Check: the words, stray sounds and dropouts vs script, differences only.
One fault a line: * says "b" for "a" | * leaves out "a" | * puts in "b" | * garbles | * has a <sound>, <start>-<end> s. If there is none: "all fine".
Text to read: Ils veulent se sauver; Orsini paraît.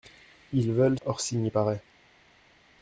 * leaves out "se sauver"